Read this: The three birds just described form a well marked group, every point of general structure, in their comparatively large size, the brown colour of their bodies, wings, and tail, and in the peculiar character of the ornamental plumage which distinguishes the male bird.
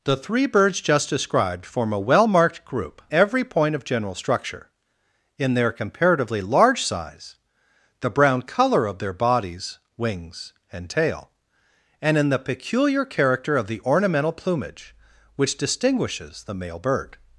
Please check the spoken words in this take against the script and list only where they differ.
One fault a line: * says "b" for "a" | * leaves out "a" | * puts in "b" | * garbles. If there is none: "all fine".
all fine